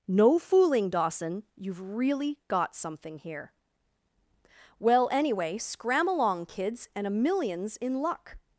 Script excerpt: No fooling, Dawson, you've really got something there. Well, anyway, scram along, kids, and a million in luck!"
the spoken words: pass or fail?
fail